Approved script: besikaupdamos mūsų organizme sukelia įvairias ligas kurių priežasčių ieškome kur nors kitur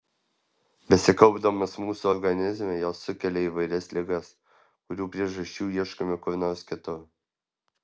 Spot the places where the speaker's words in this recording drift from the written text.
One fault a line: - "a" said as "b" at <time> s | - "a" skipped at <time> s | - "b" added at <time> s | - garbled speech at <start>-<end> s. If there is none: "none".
- "jos" added at 2.8 s